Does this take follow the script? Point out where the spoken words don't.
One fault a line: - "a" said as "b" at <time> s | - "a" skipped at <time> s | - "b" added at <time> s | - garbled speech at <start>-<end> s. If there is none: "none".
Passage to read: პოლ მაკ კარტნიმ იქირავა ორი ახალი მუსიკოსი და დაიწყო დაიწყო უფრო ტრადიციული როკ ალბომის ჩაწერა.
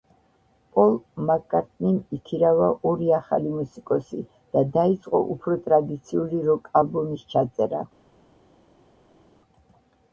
- "დაიწყო" skipped at 5.2 s